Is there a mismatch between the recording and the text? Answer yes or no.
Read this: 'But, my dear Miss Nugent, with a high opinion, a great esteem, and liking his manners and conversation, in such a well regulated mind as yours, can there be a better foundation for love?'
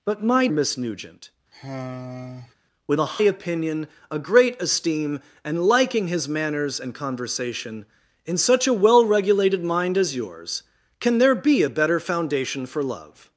yes